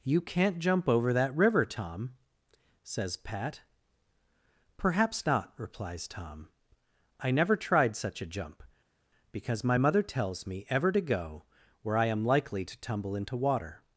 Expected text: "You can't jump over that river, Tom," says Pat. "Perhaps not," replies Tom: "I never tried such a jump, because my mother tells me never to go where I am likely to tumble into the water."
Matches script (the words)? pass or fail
fail